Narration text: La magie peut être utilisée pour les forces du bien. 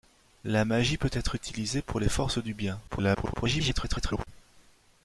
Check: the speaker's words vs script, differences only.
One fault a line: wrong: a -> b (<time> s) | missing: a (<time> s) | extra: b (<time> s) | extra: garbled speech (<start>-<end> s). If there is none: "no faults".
extra: garbled speech (2.9-4.3 s)